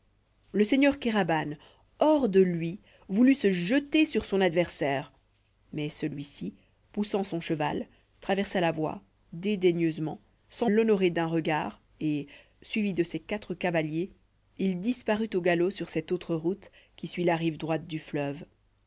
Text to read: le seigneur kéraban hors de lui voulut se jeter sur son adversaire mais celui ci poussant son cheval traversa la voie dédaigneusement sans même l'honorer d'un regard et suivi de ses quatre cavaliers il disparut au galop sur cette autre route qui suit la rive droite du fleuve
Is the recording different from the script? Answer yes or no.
yes